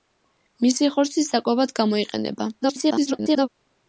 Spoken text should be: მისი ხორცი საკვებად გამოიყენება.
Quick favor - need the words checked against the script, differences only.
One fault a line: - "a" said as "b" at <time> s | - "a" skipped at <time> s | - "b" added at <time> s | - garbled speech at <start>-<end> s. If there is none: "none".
- garbled speech at 2.6-3.5 s